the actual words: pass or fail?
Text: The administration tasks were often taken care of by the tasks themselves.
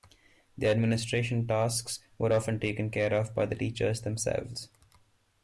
fail